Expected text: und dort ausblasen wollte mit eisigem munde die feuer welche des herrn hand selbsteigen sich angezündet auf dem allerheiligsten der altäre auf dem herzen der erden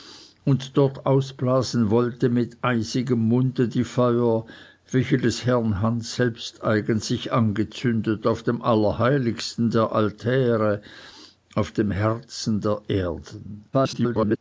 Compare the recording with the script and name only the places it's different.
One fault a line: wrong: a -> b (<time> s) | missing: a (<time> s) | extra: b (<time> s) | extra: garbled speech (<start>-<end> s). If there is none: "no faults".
extra: garbled speech (13.7-14.4 s)